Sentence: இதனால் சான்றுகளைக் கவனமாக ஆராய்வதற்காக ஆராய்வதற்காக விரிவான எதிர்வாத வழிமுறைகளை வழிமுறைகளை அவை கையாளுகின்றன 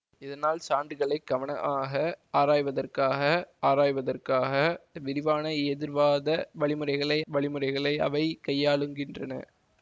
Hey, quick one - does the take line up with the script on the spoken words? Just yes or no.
yes